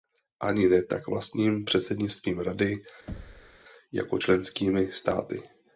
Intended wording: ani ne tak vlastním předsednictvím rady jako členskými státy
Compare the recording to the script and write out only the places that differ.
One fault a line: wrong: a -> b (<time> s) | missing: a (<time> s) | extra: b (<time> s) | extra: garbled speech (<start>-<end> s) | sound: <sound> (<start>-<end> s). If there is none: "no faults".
sound: thud (3.1-3.6 s)